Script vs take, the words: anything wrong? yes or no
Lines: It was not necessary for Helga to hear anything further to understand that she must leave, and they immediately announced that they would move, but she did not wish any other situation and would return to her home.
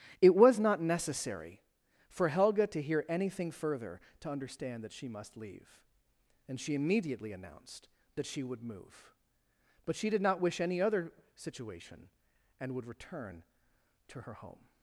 yes